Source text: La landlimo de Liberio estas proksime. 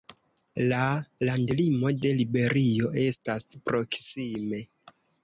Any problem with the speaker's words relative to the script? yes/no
no